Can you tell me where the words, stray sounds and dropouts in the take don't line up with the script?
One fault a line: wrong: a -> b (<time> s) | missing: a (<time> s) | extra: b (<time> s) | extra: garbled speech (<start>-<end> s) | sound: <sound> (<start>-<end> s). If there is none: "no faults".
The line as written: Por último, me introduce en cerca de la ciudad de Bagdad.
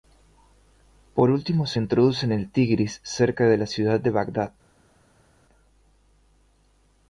wrong: me -> se (1.7 s)
extra: el Tigris (2.3 s)